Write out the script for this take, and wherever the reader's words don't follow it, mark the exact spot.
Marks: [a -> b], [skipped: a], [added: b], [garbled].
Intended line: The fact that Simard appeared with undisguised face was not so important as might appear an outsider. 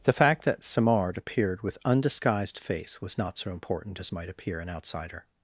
The fact that Simard appeared with undisguised face was not so important as might appear an outsider.